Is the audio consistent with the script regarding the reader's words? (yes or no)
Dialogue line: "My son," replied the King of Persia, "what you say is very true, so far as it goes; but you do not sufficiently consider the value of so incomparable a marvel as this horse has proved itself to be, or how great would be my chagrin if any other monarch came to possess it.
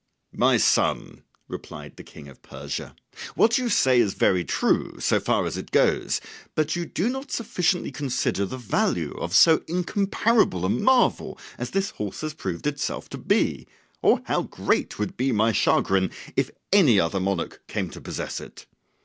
yes